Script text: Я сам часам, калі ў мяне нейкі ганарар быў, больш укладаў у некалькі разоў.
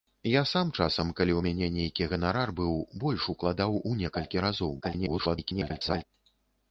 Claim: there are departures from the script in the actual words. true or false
true